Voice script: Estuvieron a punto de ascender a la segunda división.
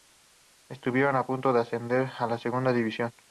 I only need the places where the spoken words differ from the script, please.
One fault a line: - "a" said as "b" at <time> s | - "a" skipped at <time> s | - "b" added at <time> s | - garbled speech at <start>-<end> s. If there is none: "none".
none